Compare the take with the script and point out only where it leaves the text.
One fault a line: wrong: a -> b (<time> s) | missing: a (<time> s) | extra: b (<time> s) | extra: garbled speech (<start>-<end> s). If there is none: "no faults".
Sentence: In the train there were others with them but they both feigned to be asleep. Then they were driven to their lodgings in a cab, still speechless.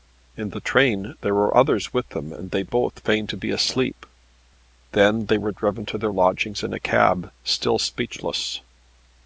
wrong: but -> and (2.3 s)